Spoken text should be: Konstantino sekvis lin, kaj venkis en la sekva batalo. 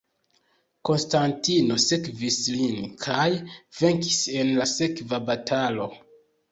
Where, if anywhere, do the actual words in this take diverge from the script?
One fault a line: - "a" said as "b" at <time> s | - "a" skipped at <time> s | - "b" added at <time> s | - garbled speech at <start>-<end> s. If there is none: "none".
none